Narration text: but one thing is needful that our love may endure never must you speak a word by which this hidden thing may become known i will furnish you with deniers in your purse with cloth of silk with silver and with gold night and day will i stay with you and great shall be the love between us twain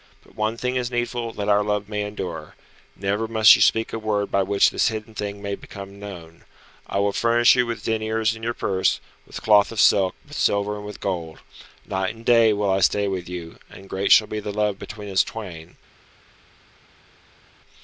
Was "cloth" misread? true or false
false